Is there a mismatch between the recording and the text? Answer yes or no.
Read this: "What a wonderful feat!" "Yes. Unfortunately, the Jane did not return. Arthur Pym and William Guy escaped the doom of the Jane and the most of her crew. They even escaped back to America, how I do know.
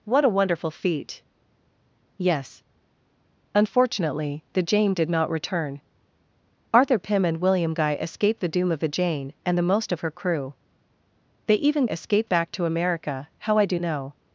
no